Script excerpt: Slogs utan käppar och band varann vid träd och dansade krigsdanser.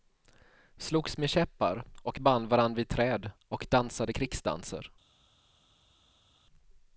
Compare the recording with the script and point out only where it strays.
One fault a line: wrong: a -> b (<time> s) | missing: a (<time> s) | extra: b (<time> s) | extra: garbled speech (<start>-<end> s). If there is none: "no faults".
wrong: utan -> med (1.2 s)